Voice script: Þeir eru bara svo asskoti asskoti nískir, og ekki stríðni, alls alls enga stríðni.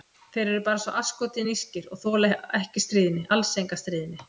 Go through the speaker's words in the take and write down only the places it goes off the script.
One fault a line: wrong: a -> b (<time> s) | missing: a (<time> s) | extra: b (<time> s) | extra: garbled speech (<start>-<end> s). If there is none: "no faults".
missing: asskoti (1.4 s)
extra: þola (2.1 s)
missing: alls (3.6 s)